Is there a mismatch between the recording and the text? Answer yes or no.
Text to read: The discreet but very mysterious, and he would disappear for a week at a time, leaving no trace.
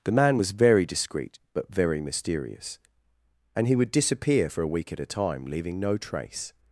yes